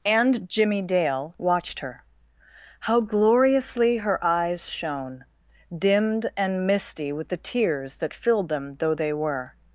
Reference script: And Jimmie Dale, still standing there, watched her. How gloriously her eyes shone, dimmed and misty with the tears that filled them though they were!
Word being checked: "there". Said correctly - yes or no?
no